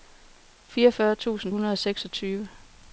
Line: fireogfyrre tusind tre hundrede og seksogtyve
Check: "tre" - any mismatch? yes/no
yes